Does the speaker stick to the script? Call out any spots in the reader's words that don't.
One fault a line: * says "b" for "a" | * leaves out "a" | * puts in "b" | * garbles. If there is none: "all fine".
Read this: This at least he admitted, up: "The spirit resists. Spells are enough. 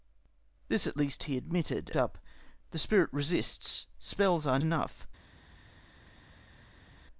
all fine